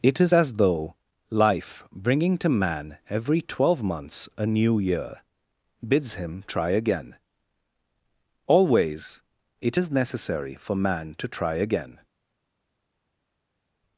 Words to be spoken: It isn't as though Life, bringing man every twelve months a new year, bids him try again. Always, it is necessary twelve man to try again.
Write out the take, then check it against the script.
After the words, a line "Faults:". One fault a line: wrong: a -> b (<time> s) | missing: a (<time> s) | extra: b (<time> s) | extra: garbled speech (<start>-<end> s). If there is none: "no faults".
It is as though Life, bringing to man every twelve months a new year, bids him try again. Always, it is necessary for man to try again.
Faults:
wrong: isn't -> is (0.2 s)
extra: to (2.4 s)
wrong: twelve -> for (10.6 s)